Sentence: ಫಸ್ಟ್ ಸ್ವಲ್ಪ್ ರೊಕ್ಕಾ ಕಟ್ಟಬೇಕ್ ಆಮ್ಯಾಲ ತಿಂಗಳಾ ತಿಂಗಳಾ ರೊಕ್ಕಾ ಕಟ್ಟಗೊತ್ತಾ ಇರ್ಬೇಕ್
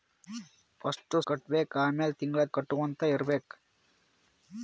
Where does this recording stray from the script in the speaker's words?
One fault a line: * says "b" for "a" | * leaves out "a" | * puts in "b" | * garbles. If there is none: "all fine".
* leaves out "ಸ್ವಲ್ಪ್ ರೊಕ್ಕಾ"
* leaves out "ತಿಂಗಳಾ ರೊಕ್ಕಾ"